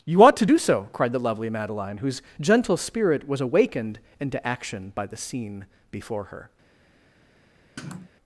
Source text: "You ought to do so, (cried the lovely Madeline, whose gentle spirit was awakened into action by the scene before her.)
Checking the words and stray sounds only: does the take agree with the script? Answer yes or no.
no